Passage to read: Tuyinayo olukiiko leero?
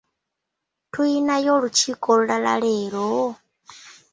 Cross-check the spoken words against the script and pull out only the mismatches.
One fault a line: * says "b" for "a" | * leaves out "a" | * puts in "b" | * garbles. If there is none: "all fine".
* puts in "olulala"